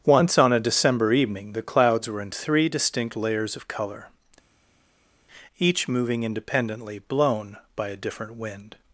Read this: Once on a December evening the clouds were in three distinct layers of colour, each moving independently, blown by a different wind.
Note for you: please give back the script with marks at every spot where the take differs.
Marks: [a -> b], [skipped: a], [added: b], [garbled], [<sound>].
Once on a December evening the clouds were in three distinct layers of colour, each moving independently, blown by a different wind.